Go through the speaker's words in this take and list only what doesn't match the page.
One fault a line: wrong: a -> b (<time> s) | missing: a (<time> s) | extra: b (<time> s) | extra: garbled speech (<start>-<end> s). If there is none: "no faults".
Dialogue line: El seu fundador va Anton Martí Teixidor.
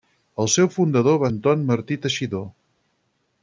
no faults